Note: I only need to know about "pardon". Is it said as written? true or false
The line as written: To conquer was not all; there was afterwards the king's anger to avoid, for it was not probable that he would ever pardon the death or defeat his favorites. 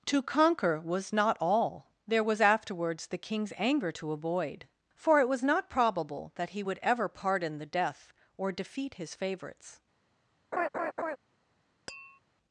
true